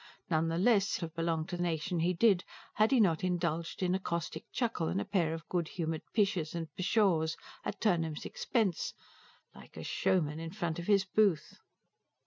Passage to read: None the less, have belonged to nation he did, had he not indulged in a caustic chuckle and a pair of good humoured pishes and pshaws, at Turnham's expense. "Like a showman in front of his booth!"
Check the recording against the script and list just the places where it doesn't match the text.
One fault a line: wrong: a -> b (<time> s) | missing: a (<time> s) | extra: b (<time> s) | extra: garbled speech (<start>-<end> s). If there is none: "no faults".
no faults